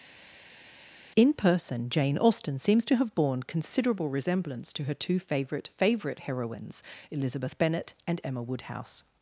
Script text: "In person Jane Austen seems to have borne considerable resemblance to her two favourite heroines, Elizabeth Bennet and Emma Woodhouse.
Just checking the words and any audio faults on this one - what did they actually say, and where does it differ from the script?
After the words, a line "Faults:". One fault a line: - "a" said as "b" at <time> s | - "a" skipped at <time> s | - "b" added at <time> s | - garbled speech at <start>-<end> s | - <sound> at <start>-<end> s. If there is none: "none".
"In person Jane Austen seems to have borne considerable resemblance to her two favourite favourite heroines, Elizabeth Bennet and Emma Woodhouse.
Faults:
- "favourite" added at 5.7 s